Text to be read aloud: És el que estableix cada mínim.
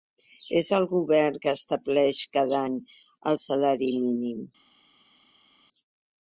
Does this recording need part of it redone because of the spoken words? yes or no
yes